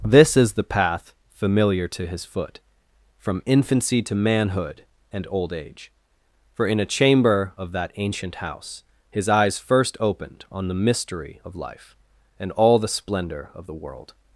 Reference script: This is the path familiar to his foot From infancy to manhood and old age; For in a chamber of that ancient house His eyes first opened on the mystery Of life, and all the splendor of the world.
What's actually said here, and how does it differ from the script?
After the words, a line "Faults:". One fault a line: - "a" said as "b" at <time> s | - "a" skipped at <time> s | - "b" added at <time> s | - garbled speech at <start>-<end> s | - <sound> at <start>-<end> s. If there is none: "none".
This is the path familiar to his foot From infancy to manhood and old age; For in a chamber of that ancient house His eyes first opened on the mystery Of life, and all the splendor of the world.
Faults:
none